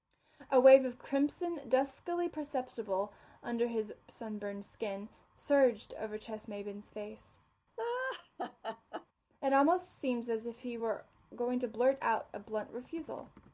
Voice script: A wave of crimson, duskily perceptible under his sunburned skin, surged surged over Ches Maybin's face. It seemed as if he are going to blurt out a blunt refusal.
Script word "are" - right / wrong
wrong